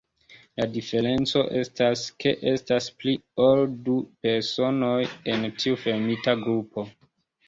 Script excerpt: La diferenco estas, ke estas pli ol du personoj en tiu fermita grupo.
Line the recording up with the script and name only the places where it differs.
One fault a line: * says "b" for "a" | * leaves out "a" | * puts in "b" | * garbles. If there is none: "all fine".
all fine